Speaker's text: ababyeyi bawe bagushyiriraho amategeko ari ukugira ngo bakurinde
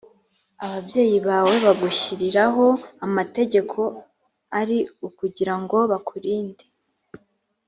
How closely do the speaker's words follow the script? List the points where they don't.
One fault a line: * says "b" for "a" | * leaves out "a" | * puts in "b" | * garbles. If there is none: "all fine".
all fine